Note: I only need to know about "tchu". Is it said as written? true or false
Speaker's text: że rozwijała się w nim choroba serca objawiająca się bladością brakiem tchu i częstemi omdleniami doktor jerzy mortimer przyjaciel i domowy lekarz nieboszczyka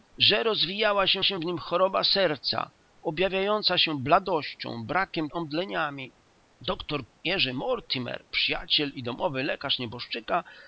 false